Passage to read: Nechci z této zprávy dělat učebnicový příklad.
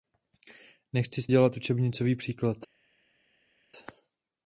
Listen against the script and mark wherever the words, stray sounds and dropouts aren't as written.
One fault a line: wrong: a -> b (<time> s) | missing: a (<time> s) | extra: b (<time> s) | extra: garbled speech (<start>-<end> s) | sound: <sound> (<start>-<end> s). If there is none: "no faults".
missing: této zprávy (1.3 s)